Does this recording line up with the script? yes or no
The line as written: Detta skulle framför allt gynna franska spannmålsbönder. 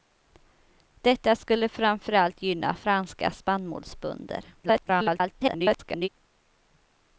no